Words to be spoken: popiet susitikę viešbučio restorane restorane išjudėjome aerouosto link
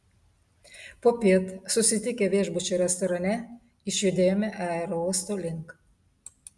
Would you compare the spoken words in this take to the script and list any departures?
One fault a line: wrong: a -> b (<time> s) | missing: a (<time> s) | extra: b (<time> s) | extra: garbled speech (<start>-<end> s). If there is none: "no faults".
missing: restorane (3.4 s)